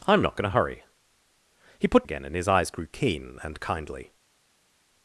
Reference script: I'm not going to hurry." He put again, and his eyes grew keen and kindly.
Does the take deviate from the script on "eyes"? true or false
false